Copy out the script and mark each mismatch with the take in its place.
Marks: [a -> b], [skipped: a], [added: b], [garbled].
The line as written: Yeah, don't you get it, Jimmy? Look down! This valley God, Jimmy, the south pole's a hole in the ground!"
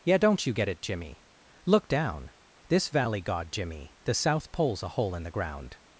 Yeah, don't you get it, Jimmy? Look down! This valley God, Jimmy, the south pole's a hole in the ground!"